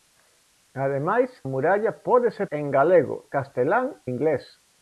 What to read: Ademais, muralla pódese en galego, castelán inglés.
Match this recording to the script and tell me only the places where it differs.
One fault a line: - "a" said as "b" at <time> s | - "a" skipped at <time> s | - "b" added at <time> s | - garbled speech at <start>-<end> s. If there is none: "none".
none